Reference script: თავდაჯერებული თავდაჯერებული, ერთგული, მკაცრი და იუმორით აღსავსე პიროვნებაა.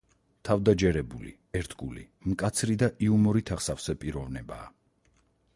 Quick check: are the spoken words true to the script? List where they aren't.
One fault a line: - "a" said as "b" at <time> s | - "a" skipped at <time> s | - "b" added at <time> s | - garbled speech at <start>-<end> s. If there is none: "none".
- "თავდაჯერებული" skipped at 1.3 s